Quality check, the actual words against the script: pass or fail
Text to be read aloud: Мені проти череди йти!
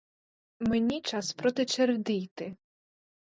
fail